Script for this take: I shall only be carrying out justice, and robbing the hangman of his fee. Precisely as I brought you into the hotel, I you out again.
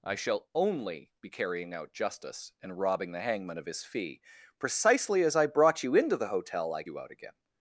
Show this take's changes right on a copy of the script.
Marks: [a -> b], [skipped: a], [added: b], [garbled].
I shall only be carrying out justice, and robbing the hangman of his fee. Precisely as I brought you into the hotel, I you out again.